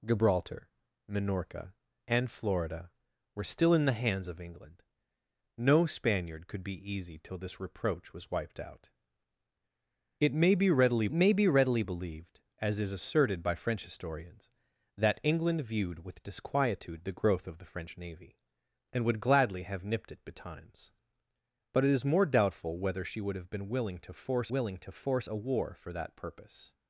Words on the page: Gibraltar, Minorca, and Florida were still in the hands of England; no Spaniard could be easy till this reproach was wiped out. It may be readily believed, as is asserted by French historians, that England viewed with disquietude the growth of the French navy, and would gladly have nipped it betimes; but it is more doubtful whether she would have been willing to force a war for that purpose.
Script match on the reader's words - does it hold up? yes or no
no